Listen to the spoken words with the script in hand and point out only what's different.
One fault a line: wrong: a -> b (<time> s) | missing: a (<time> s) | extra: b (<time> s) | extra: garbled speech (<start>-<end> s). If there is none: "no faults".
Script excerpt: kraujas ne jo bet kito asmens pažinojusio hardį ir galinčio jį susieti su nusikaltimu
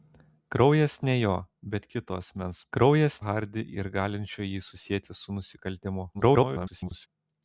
wrong: pažinojusio -> kraujas (2.7 s)
extra: garbled speech (6.1-7.1 s)